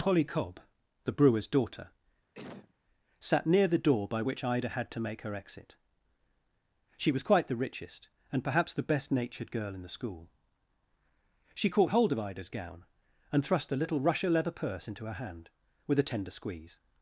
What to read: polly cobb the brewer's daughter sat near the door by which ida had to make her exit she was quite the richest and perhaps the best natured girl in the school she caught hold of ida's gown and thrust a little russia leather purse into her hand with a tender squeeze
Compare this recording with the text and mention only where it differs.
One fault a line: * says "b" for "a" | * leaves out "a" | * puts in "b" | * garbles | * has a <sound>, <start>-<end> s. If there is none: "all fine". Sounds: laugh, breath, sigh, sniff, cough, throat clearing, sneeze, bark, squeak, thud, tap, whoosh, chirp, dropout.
* has a sneeze, 2.3-2.7 s